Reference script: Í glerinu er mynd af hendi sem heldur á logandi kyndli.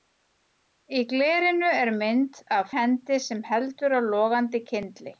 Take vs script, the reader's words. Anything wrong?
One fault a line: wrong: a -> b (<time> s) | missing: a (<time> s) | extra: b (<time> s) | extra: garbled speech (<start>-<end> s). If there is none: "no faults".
no faults